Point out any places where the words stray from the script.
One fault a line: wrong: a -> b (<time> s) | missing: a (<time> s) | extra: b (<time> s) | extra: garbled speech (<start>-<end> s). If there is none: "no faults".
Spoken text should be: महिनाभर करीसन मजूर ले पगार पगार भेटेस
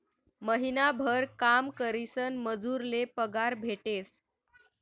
extra: काम (1.4 s)
missing: पगार (3.5 s)